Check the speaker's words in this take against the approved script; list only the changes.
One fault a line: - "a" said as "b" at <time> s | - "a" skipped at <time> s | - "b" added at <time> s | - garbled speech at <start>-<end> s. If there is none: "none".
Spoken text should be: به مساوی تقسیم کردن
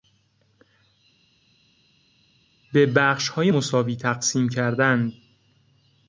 - "بخشهای" added at 2.9 s